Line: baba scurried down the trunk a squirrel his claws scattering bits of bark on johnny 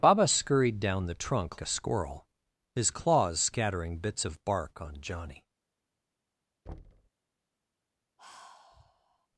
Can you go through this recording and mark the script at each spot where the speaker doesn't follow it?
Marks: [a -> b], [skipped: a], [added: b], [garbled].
baba scurried down the trunk a squirrel his claws scattering bits of bark on johnny